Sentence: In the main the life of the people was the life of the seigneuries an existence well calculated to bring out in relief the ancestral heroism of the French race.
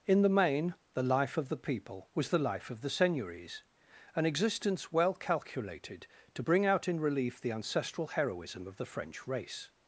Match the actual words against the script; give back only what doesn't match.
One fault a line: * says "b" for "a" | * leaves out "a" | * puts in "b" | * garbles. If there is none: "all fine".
all fine